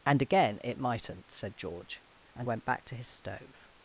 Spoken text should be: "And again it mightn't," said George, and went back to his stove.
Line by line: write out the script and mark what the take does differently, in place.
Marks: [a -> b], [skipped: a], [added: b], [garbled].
"And again it mightn't," said George, and went back to his stove.